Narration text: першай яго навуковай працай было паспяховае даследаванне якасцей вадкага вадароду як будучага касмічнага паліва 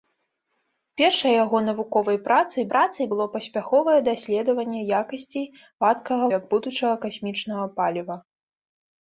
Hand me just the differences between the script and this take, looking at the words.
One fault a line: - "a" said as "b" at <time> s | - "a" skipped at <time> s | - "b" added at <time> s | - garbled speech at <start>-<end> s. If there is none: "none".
- "працай" added at 2.7 s
- "вадароду" skipped at 6.2 s